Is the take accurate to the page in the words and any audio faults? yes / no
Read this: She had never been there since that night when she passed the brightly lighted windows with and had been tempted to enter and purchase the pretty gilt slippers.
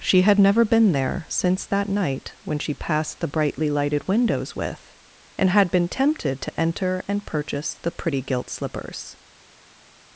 yes